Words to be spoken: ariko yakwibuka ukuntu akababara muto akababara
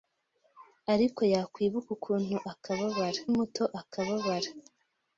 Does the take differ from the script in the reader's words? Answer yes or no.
no